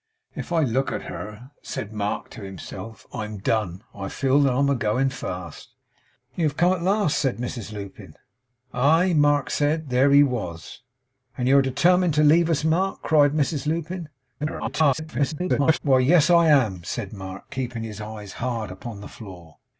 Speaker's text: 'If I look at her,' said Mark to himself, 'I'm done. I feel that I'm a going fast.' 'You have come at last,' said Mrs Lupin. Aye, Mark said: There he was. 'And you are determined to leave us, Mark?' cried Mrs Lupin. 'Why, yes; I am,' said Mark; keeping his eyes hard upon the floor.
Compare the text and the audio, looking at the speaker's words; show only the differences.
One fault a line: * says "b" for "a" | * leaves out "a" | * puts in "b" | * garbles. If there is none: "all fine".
* garbles